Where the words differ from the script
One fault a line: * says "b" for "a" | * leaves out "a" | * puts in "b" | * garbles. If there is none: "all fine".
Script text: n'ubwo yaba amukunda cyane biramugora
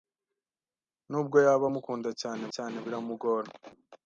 * puts in "cyane"